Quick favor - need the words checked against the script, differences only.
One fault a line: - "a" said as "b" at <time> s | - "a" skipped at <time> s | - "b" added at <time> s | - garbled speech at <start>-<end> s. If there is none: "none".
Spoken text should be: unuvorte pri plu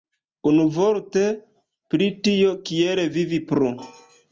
- "tio kiel vivi" added at 2.3 s